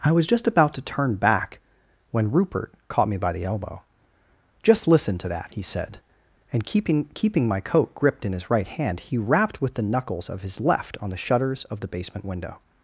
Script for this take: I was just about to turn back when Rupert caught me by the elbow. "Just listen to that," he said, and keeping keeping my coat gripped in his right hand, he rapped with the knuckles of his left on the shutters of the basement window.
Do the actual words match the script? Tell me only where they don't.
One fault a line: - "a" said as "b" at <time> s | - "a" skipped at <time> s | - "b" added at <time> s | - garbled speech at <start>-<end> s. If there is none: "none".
none